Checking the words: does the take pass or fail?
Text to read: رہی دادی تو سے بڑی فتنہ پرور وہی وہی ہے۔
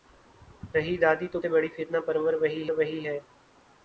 pass